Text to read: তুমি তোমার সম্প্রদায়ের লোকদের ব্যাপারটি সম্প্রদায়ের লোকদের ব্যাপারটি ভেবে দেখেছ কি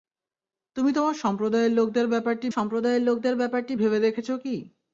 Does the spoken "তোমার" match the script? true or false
true